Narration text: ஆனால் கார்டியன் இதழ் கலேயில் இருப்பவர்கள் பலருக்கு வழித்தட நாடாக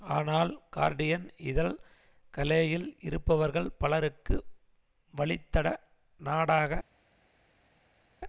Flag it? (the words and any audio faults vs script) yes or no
no